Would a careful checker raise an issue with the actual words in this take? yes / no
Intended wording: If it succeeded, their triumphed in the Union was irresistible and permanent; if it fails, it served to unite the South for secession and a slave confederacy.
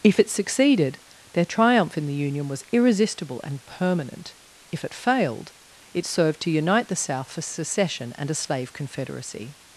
yes